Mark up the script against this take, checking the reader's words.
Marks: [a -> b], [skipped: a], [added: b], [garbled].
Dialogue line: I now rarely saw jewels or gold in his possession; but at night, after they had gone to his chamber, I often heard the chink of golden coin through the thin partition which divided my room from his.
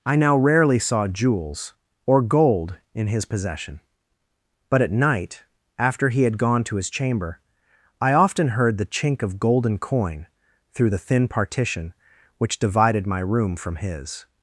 I now rarely saw jewels or gold in his possession; but at night, after [they -> he] had gone to his chamber, I often heard the chink of golden coin through the thin partition which divided my room from his.